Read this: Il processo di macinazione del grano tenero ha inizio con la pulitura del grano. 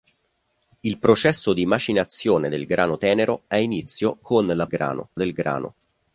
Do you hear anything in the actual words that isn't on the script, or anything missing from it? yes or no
yes